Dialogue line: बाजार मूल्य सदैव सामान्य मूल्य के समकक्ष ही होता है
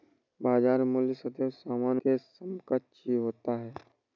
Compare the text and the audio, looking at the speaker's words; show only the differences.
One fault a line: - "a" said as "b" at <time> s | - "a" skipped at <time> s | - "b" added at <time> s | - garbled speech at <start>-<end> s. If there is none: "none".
- "मूल्य" skipped at 2.0 s